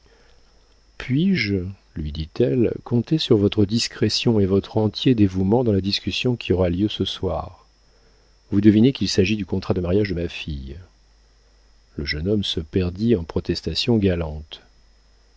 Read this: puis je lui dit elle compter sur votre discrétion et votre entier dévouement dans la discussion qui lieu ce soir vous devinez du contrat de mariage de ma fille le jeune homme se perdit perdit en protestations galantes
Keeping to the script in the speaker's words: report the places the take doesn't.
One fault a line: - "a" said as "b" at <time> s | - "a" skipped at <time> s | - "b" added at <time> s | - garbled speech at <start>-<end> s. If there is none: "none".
- "aura" added at 6.5 s
- "qu'il s'agit" added at 8.9 s
- "perdit" skipped at 13.1 s